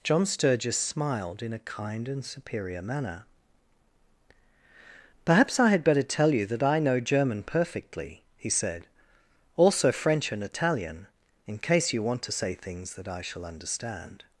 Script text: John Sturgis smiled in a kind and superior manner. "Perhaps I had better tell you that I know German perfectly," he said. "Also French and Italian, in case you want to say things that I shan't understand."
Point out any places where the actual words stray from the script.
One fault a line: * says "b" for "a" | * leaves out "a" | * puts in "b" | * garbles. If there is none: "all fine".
* says "shall" for "shan't"